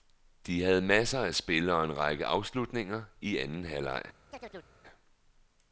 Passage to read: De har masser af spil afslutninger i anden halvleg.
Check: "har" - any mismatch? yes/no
yes